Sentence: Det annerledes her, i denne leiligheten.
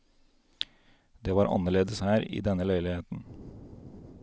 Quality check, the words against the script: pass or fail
fail